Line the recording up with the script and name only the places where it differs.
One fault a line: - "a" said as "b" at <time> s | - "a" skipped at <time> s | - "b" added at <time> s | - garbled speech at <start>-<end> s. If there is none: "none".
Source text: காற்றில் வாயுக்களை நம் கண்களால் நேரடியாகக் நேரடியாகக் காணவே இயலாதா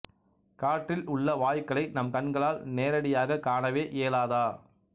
- "உள்ள" added at 1.1 s
- "நேரடியாகக்" skipped at 3.4 s